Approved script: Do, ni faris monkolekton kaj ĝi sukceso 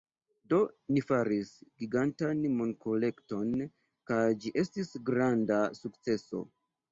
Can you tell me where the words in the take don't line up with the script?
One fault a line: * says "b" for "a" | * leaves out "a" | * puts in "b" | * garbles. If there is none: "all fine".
* puts in "gigantan"
* puts in "estis granda"